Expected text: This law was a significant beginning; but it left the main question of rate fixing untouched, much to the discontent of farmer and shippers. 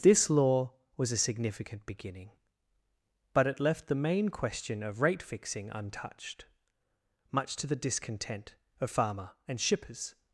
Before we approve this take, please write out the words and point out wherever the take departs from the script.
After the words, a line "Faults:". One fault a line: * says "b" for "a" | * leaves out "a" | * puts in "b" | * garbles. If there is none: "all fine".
This law was a significant beginning; but it left the main question of rate fixing untouched, much to the discontent of farmer and shippers.
Faults:
all fine